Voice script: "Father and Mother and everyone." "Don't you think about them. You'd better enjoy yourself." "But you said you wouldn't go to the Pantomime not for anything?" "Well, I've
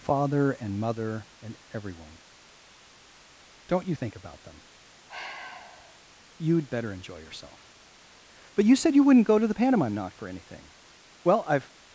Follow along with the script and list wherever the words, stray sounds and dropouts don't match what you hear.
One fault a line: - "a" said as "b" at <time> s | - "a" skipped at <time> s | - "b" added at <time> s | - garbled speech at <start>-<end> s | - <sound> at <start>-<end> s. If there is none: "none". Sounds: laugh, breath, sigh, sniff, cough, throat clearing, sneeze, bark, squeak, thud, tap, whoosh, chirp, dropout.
- sigh at 5.1-6.0 s